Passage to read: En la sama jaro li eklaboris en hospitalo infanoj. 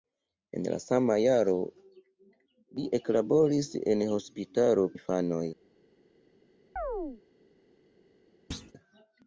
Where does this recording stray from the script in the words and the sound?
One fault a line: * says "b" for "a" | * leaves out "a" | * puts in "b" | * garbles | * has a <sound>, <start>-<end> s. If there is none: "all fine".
* has a chirp, 6.8-7.2 s
* has a thud, 8.5-8.7 s